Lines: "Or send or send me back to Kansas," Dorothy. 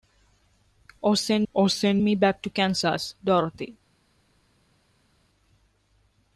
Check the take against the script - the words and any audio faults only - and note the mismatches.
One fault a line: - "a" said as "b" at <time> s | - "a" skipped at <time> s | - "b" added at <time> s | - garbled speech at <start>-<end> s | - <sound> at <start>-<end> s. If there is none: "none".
none